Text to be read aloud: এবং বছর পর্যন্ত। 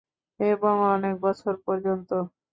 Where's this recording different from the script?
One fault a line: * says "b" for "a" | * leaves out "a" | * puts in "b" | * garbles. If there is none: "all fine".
* puts in "অনেক"